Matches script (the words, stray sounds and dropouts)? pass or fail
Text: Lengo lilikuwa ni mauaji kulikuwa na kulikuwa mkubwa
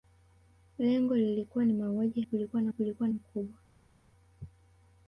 pass